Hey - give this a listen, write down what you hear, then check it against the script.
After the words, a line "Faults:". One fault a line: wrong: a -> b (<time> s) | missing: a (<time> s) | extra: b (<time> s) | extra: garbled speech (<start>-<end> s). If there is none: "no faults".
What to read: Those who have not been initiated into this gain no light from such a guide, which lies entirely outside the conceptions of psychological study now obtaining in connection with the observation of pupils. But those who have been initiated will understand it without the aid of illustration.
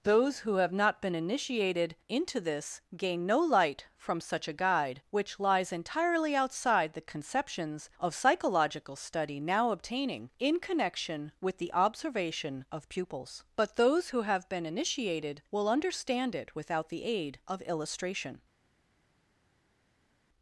Those who have not been initiated into this gain no light from such a guide, which lies entirely outside the conceptions of psychological study now obtaining in connection with the observation of pupils. But those who have been initiated will understand it without the aid of illustration.
Faults:
no faults